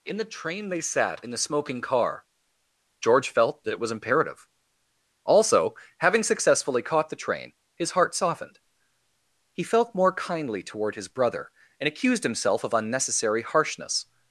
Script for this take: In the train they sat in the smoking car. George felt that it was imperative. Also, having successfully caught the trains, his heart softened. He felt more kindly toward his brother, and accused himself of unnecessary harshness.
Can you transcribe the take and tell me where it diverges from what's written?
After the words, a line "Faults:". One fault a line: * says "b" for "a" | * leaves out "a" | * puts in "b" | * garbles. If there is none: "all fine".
In the train they sat in the smoking car. George felt that it was imperative. Also, having successfully caught the train, his heart softened. He felt more kindly toward his brother, and accused himself of unnecessary harshness.
Faults:
* says "train" for "trains"